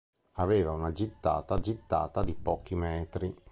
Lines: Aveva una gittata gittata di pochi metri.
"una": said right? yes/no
yes